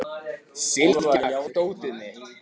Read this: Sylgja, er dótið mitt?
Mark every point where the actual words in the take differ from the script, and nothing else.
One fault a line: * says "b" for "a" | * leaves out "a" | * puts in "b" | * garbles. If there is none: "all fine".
all fine